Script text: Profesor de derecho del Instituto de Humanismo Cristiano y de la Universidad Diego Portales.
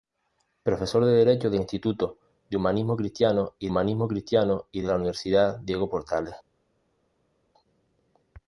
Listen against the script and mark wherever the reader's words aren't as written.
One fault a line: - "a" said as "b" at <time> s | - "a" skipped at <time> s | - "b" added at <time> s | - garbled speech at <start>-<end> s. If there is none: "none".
- "Humanismo Cristiano y" added at 3.7 s